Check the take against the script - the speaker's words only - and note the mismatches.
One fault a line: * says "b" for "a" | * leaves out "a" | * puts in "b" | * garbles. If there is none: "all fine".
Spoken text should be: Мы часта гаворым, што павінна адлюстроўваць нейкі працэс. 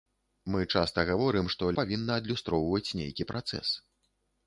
all fine